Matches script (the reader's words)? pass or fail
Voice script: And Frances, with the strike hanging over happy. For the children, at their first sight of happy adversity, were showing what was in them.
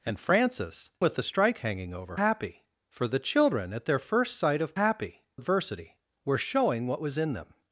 pass